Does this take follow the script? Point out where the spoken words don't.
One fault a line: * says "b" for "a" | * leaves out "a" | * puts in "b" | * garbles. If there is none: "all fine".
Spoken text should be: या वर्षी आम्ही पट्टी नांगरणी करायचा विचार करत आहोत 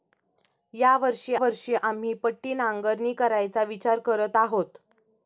* puts in "वर्षी"